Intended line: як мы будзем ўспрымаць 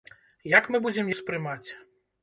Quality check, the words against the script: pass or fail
pass